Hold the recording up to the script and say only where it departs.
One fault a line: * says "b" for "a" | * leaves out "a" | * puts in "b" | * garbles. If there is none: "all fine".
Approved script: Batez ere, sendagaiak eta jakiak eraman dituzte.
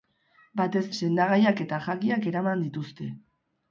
* leaves out "ere"